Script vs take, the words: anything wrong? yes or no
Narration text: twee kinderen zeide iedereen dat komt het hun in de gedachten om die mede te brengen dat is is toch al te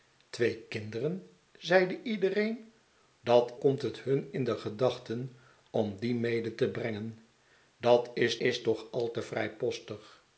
no